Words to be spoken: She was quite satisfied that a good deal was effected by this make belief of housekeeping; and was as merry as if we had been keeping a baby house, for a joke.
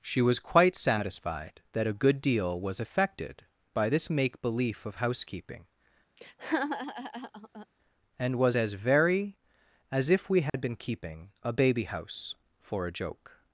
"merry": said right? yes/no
no